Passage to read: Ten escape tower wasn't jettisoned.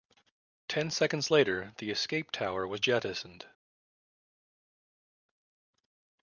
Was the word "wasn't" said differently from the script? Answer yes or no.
yes